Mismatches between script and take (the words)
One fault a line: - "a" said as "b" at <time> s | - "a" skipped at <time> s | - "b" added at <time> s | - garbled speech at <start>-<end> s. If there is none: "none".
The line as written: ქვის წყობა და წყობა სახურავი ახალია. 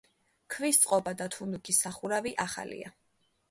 - "წყობა" said as "თუნუქის" at 1.3 s